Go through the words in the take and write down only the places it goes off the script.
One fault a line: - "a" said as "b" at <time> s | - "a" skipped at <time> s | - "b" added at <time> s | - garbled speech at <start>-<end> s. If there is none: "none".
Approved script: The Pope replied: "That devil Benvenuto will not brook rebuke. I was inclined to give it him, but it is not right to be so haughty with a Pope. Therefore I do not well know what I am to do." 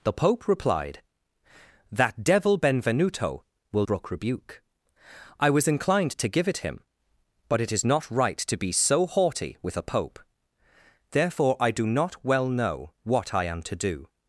- "not" skipped at 3.9 s